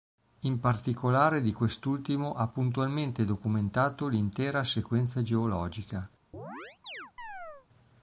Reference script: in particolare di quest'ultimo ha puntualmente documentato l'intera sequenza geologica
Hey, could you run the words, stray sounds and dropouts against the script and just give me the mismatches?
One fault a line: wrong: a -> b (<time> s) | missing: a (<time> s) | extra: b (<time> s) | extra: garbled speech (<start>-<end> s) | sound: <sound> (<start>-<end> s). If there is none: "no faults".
sound: chirp (6.3-7.7 s)